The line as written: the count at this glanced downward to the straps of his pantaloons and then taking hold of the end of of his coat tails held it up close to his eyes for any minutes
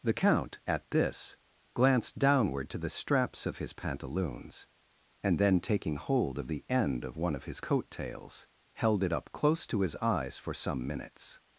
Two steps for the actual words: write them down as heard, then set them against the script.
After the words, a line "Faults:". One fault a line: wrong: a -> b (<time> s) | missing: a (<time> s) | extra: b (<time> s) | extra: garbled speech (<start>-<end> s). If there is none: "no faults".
the count at this glanced downward to the straps of his pantaloons and then taking hold of the end of one of his coat tails held it up close to his eyes for some minutes
Faults:
extra: one (7.2 s)
wrong: any -> some (10.5 s)